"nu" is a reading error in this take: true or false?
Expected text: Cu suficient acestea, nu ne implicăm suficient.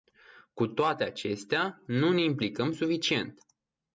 false